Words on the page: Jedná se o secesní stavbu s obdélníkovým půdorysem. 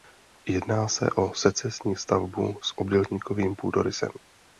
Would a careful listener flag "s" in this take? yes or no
no